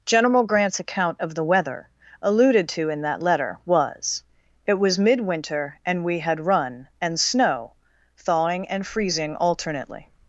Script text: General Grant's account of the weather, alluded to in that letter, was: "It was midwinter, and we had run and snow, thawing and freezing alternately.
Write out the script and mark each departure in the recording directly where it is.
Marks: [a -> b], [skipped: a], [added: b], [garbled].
General Grant's account of the weather, alluded to in that letter, was: "It was midwinter, and we had run and snow, thawing and freezing alternately.